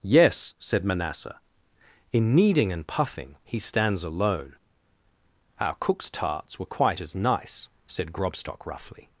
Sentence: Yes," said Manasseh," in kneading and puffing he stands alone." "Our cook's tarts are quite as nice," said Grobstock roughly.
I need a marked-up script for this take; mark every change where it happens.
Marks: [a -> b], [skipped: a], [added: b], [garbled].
Yes," said Manasseh," in kneading and puffing he stands alone." "Our cook's tarts [are -> were] quite as nice," said Grobstock roughly.